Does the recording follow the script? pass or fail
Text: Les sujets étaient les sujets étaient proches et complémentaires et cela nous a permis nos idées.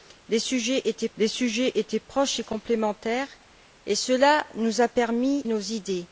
pass